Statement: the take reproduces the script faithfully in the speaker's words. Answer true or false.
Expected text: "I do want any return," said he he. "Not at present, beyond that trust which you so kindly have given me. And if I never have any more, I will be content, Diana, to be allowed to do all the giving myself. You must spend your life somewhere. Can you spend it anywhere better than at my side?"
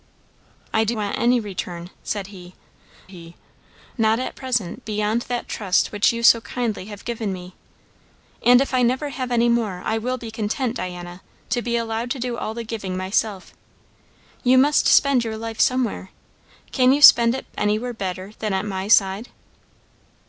true